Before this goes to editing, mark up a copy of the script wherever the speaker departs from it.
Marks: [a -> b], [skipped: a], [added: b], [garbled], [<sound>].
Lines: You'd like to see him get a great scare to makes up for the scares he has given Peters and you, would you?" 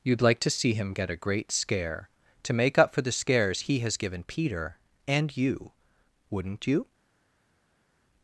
You'd like to see him get a great scare to [makes -> make] up for the scares he has given [Peters -> Peter] and you, [would -> wouldn't] you?"